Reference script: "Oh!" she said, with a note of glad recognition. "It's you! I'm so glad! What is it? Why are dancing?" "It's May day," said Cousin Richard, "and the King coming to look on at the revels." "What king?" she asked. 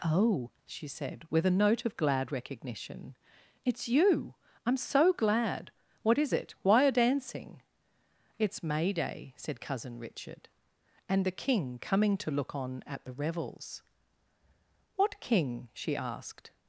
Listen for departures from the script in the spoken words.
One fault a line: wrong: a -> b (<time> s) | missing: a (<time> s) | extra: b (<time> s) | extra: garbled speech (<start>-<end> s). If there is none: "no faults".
no faults